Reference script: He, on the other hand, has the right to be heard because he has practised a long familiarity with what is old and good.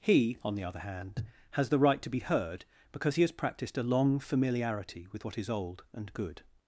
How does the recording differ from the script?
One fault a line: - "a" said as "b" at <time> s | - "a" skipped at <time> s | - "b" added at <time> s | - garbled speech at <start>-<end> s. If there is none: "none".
none